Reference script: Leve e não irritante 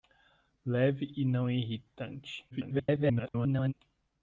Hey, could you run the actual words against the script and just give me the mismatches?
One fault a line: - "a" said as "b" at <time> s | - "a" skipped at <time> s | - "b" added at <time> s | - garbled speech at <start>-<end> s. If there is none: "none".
- garbled speech at 2.5-3.7 s